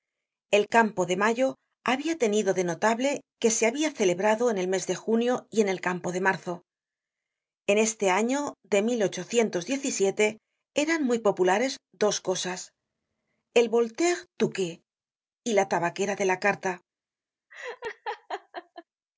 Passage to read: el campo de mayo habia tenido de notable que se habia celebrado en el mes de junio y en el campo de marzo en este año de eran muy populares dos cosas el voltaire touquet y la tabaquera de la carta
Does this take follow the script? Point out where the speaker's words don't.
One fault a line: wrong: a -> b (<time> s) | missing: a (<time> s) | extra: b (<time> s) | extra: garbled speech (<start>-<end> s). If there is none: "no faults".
no faults